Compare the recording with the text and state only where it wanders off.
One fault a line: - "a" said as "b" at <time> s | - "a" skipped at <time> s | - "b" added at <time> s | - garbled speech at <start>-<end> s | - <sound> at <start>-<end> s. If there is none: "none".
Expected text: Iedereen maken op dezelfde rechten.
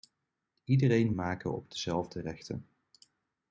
none